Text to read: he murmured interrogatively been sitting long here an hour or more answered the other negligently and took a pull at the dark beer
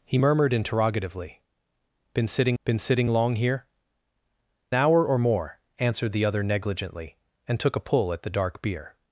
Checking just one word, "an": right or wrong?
wrong